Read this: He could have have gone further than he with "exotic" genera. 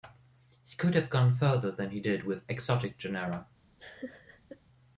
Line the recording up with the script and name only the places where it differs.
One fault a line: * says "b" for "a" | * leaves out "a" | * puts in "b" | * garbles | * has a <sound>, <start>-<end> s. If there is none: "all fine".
* leaves out "have"
* puts in "did"
* has a laugh, 3.8-4.6 s